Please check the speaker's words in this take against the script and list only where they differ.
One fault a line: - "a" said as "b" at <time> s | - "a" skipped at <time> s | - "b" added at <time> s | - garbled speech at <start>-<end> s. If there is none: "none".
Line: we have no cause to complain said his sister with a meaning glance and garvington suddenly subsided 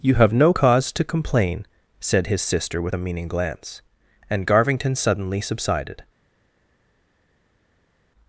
- "we" said as "you" at 0.0 s